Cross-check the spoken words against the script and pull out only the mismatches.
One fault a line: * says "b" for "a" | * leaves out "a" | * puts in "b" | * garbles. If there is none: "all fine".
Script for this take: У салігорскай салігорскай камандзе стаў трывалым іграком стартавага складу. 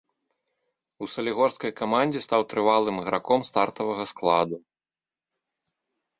* leaves out "салігорскай"